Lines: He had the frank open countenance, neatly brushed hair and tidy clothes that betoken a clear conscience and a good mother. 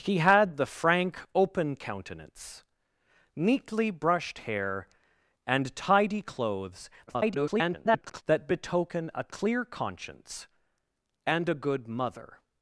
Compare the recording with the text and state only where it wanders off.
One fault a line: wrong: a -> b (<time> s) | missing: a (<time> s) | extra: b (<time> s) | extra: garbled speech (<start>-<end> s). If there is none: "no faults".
extra: garbled speech (7.1-8.2 s)